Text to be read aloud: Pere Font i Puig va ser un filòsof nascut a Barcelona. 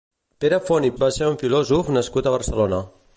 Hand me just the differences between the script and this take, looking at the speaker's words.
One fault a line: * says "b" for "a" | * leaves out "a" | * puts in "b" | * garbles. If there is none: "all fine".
* leaves out "Puig"